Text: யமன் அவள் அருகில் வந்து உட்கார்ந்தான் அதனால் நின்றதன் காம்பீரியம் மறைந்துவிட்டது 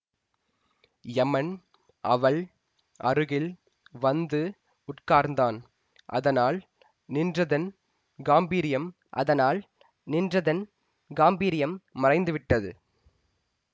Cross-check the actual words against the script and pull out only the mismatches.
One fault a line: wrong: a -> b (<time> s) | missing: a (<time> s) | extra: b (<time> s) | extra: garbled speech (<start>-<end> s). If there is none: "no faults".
extra: அதனால் நின்றதன் காம்பீரியம் (9.1 s)